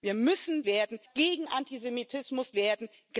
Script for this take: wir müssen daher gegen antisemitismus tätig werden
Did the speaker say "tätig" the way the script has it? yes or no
no